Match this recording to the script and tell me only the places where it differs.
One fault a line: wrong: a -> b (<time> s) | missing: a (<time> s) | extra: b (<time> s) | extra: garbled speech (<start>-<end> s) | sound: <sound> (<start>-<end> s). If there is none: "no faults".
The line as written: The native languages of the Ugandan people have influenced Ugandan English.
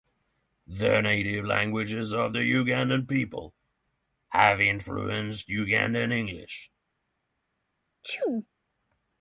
sound: sneeze (8.0-8.5 s)